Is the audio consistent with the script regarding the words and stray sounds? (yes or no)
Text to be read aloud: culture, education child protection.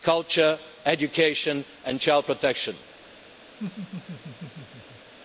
no